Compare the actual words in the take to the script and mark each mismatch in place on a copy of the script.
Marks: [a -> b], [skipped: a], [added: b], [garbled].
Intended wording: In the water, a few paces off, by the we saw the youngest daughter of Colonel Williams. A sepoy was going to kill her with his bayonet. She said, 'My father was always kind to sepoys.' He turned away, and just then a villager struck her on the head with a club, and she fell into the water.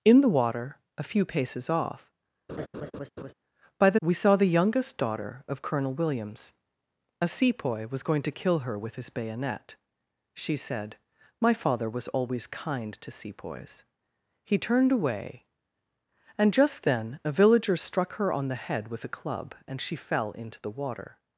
In the water, a few paces off, by the we saw the youngest daughter of Colonel Williams. A sepoy was going to kill her with his bayonet. She said, 'My father was always kind to sepoys.' He turned away, and just then a villager struck her on the head with a club, and she fell into the water.